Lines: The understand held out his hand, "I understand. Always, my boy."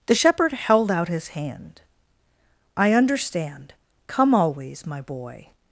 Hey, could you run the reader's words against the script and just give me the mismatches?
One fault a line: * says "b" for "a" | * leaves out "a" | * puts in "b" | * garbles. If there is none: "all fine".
* says "shepherd" for "understand"
* puts in "Come"